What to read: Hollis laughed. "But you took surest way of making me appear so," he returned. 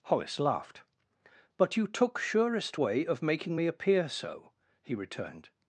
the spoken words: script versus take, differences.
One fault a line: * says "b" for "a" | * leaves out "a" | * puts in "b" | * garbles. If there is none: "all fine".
all fine